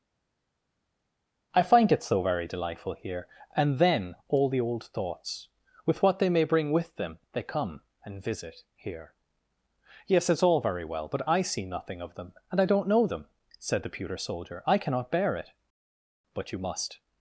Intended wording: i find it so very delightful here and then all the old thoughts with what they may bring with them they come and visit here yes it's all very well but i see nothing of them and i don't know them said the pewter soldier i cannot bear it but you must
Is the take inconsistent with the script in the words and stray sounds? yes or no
no